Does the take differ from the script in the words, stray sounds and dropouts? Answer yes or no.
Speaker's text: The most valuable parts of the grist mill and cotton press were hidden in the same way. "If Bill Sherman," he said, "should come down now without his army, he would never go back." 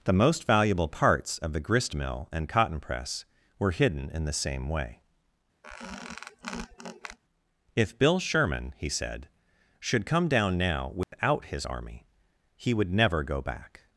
yes